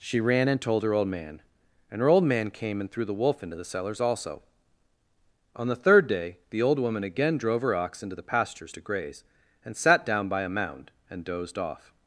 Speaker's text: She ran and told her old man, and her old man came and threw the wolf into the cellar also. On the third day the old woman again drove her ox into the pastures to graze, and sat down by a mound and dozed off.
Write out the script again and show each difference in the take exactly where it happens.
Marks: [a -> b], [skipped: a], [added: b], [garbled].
She ran and told her old man, and her old man came and threw the wolf into the [cellar -> cellars] also. On the third day the old woman again drove her ox into the pastures to graze, and sat down by a mound and dozed off.